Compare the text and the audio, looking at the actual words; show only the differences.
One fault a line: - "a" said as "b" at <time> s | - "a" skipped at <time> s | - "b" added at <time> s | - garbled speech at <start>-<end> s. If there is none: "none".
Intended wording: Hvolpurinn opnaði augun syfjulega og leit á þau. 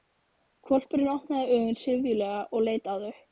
none